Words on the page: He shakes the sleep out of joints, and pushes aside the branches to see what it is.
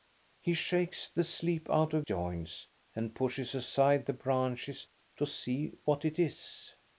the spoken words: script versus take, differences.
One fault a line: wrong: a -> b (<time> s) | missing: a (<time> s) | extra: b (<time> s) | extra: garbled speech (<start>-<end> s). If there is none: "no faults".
no faults